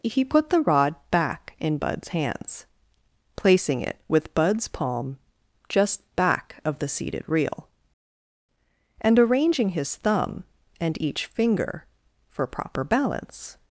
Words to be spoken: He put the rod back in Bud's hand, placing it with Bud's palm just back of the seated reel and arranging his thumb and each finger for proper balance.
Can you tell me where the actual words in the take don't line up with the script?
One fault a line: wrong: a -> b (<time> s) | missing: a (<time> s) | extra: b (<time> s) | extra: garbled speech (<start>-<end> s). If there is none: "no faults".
wrong: hand -> hands (2.1 s)